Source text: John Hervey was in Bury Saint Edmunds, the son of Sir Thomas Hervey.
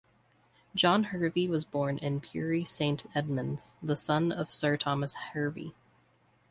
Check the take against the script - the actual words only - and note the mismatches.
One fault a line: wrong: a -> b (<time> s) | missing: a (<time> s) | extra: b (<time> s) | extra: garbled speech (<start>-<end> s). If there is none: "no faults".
extra: born (1.6 s)